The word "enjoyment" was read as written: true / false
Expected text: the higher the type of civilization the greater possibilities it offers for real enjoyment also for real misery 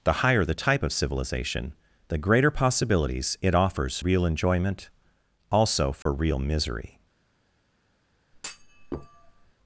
true